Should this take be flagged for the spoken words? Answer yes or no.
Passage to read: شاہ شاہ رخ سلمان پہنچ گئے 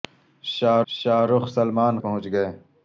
no